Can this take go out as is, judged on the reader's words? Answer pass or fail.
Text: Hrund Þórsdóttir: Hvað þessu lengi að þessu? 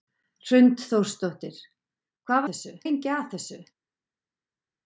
pass